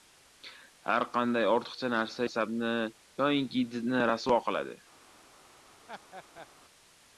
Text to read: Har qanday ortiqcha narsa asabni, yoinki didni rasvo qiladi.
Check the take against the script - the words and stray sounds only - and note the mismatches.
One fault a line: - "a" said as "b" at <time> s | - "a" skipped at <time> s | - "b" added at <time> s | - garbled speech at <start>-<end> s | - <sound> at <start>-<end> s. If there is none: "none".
- laugh at 5.9-6.5 s